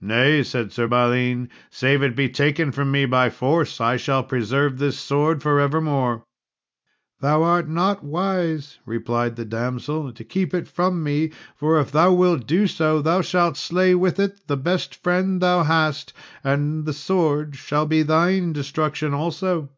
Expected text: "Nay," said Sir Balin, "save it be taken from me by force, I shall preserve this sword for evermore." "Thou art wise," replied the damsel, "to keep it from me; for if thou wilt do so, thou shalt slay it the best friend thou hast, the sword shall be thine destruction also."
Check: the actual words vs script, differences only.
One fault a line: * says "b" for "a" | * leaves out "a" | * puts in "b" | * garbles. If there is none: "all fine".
* puts in "not"
* puts in "with"
* puts in "and"